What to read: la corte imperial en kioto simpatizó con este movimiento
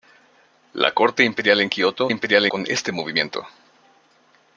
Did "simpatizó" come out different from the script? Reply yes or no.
yes